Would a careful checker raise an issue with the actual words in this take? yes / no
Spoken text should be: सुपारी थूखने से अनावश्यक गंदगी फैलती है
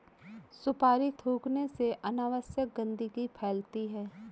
no